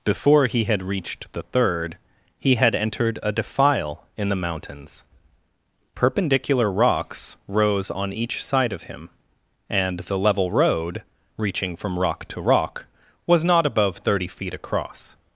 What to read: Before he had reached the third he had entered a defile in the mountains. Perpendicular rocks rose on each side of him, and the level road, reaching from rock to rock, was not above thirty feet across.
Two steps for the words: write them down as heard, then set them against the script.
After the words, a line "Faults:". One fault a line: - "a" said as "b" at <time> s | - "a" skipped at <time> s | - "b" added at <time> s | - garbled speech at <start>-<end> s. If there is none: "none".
Before he had reached the third he had entered a defile in the mountains. Perpendicular rocks rose on each side of him, and the level road, reaching from rock to rock, was not above thirty feet across.
Faults:
none